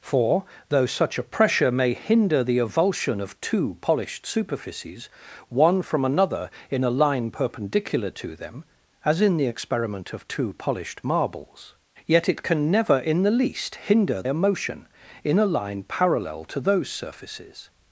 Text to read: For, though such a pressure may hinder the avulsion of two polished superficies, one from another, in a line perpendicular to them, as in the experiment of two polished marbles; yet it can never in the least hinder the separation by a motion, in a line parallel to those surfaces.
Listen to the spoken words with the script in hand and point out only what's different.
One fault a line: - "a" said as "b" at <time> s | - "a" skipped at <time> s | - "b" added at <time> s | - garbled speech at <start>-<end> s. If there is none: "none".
- "the separation by" skipped at 14.2 s